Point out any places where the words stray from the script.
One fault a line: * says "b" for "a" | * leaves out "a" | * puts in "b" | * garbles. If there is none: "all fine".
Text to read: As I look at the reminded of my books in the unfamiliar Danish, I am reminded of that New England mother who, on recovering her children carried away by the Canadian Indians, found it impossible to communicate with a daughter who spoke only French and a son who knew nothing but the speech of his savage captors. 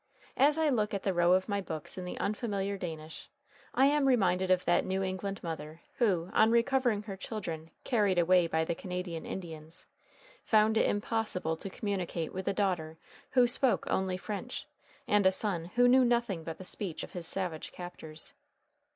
* says "row" for "reminded"